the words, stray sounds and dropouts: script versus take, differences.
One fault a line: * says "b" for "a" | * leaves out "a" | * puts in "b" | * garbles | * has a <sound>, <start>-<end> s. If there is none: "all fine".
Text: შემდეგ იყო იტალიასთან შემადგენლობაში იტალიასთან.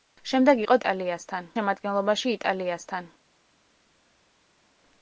all fine